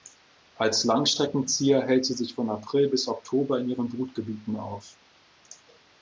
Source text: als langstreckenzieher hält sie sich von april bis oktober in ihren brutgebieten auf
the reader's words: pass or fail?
pass